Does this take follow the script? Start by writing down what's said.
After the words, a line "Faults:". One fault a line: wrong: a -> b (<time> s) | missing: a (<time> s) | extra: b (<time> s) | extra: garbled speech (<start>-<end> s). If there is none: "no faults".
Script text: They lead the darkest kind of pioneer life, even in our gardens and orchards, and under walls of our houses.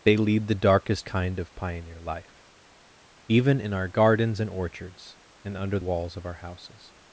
They lead the darkest kind of pioneer life, even in our gardens and orchards, and under walls of our houses.
Faults:
no faults